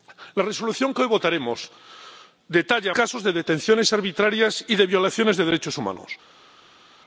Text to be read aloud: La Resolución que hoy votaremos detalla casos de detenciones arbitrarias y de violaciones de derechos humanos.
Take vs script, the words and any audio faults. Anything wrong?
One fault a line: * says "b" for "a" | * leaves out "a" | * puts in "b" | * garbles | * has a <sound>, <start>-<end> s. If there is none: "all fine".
all fine